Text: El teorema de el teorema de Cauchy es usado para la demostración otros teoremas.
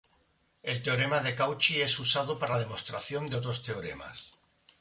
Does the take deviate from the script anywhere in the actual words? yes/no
yes